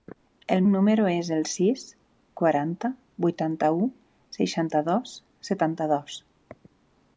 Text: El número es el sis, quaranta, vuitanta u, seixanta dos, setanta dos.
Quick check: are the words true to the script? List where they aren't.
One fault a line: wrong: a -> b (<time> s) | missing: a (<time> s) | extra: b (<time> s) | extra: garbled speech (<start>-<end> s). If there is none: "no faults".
no faults